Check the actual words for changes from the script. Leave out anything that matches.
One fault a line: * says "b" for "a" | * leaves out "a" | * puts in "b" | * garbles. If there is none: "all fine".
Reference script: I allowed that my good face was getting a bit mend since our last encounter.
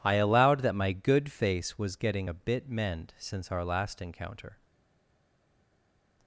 all fine